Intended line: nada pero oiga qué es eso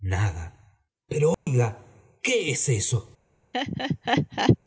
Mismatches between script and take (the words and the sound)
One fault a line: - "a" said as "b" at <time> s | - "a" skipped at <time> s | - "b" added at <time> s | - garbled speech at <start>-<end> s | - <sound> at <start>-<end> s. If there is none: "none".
- dropout at 1.3-1.5 s
- laugh at 3.5-4.6 s